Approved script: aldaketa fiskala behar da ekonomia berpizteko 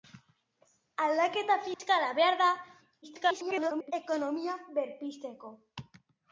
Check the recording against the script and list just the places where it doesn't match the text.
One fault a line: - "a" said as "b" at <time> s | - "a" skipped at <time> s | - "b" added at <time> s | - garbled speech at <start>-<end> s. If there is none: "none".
- garbled speech at 3.0-3.9 s